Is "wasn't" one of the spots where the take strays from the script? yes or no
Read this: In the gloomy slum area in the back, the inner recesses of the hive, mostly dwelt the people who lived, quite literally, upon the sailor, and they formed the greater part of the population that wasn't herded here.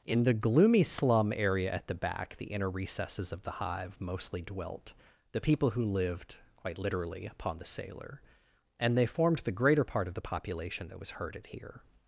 yes